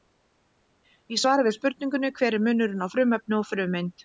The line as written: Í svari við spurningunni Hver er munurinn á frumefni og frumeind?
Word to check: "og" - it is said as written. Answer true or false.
true